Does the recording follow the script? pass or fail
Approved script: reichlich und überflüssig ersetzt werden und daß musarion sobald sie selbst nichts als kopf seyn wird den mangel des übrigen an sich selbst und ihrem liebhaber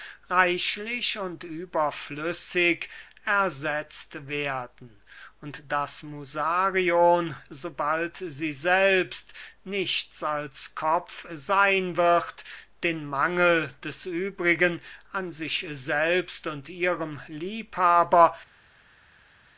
pass